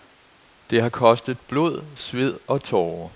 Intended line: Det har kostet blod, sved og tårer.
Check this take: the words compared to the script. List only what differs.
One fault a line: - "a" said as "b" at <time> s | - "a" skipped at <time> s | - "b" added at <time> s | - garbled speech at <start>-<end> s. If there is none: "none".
none